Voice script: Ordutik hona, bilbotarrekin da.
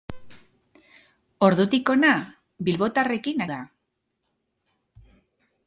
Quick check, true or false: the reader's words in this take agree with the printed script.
true